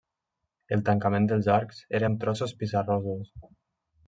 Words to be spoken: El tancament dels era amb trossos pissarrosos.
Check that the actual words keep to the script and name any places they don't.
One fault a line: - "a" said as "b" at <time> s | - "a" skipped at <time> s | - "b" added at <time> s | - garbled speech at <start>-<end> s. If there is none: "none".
- "arcs" added at 1.6 s